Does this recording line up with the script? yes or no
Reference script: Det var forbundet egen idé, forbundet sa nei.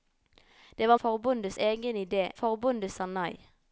yes